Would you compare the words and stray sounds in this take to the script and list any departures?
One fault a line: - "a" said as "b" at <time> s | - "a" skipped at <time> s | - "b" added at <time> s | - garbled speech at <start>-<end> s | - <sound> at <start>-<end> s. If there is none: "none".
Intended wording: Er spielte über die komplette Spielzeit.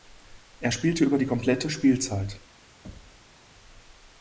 - thud at 2.8-3.4 s